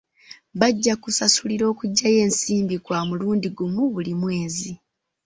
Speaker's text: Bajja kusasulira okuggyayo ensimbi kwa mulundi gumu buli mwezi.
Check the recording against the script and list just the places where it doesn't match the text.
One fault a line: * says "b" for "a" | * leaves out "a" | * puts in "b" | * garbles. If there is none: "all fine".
all fine